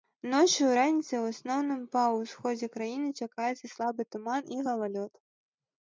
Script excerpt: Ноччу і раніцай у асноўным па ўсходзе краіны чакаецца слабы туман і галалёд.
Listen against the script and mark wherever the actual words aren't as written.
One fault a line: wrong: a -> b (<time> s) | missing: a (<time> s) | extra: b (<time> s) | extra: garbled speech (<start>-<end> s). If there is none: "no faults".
no faults